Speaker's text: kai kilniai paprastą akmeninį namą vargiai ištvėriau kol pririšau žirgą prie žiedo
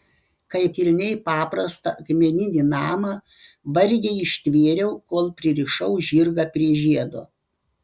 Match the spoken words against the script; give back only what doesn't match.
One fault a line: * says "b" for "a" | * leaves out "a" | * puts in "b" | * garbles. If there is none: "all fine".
all fine